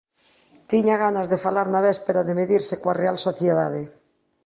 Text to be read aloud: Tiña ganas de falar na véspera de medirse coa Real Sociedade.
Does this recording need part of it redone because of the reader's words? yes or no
no